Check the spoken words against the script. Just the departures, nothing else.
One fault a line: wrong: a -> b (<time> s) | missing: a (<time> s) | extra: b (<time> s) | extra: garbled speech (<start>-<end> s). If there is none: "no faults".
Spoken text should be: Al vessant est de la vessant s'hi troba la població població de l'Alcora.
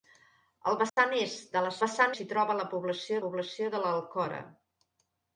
no faults